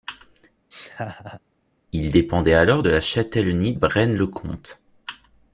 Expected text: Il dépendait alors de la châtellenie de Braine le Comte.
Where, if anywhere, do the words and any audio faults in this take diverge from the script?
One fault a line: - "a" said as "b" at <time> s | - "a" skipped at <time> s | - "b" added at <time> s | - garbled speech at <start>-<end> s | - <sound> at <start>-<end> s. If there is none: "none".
- laugh at 0.7-1.4 s
- "de" skipped at 3.7 s